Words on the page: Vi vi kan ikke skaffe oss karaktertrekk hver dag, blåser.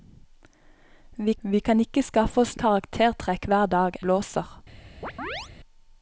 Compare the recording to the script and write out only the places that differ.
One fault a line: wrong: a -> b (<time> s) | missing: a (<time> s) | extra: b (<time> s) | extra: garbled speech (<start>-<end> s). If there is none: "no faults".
no faults